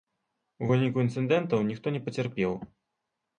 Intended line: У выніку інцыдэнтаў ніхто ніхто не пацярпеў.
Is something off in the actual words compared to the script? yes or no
yes